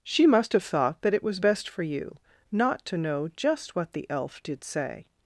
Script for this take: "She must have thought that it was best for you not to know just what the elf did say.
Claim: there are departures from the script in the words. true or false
false